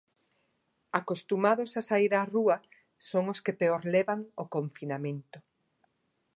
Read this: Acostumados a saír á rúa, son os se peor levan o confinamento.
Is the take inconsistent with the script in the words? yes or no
yes